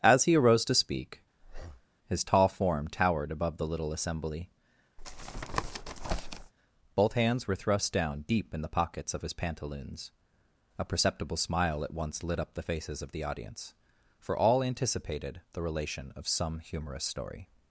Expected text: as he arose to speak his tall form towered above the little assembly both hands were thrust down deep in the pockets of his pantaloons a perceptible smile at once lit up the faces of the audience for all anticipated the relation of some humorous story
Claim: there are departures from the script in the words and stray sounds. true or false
true